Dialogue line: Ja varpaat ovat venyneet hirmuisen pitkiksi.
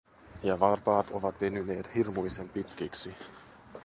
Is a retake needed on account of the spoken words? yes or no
no